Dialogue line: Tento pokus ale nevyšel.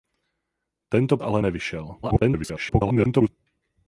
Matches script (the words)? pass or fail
fail